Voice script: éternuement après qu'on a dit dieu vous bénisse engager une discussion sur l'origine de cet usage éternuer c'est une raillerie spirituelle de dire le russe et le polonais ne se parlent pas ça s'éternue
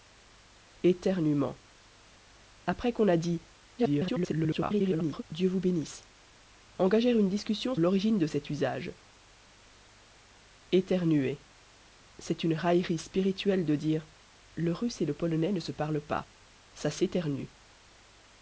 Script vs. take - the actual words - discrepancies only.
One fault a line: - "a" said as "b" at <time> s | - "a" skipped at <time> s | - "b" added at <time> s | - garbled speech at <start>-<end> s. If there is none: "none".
- garbled speech at 3.8-5.2 s
- "sur" skipped at 7.7 s